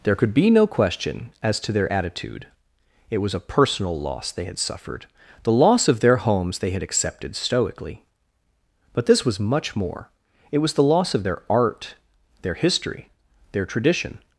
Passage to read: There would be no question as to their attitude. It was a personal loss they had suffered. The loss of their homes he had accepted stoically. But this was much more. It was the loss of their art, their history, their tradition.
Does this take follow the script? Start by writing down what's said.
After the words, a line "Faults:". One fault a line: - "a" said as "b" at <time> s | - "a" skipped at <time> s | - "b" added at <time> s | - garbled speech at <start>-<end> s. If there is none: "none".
There could be no question as to their attitude. It was a personal loss they had suffered. The loss of their homes they had accepted stoically. But this was much more. It was the loss of their art, their history, their tradition.
Faults:
- "would" said as "could" at 0.1 s
- "he" said as "they" at 6.6 s